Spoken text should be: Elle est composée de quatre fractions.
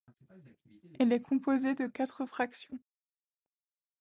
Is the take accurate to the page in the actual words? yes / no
yes